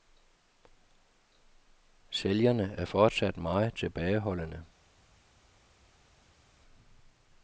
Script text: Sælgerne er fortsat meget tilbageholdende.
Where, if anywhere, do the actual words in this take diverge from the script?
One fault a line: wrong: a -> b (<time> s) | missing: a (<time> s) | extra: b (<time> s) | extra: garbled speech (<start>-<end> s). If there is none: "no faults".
no faults